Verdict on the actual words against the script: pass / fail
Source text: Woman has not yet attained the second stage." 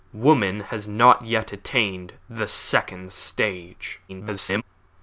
fail